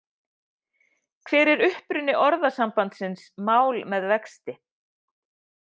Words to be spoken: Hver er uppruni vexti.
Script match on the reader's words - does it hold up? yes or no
no